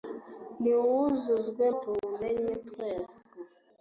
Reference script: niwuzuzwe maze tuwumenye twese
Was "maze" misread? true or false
true